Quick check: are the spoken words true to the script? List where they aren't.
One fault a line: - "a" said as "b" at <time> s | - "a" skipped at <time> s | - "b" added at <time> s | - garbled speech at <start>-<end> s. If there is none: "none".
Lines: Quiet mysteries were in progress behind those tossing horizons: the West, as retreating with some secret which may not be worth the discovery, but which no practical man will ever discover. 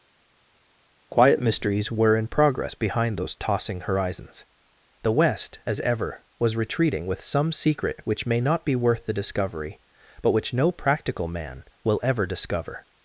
- "ever was" added at 5.8 s